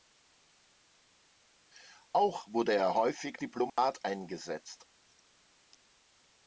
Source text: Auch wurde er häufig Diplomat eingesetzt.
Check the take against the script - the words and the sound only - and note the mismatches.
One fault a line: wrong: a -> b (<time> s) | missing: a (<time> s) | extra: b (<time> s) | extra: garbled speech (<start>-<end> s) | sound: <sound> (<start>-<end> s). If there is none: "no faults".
sound: dropout (3.7-3.8 s)